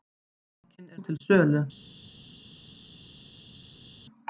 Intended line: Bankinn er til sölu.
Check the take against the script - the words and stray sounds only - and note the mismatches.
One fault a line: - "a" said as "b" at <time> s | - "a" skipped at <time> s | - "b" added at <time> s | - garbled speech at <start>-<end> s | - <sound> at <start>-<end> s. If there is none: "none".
none